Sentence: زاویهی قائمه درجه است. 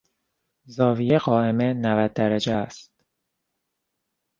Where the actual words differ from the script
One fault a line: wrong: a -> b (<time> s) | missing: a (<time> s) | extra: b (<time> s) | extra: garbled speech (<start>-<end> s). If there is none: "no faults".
extra: نود (1.7 s)